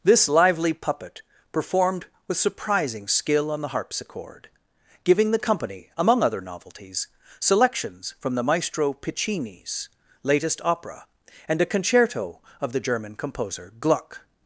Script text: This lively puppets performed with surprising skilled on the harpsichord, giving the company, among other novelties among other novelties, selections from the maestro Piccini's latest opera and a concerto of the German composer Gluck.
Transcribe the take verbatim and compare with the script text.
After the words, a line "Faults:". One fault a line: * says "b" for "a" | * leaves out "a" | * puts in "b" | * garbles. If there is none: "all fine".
This lively puppet performed with surprising skill on the harpsichord, giving the company, among other novelties, selections from the maestro Piccini's latest opera and a concerto of the German composer Gluck.
Faults:
* says "puppet" for "puppets"
* says "skill" for "skilled"
* leaves out "among other novelties"